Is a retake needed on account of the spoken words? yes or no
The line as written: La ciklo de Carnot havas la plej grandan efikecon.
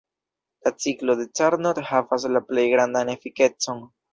no